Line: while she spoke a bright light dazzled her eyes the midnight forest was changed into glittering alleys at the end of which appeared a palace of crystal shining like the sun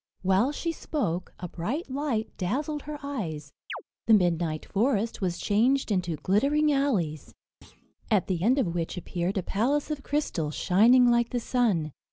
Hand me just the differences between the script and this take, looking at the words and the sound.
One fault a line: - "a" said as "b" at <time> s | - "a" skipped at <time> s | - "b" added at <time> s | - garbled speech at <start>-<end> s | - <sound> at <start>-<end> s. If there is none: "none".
- chirp at 3.7-3.8 s
- thud at 7.6-7.9 s